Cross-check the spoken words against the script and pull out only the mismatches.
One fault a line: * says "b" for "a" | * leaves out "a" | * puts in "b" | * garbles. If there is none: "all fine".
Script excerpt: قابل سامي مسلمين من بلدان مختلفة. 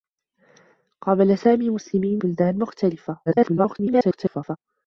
* leaves out "من"
* garbles